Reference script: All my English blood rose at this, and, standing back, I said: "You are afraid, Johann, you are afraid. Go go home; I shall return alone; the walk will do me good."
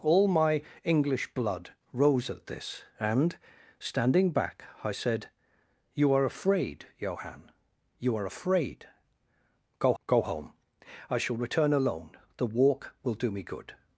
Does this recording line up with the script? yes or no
yes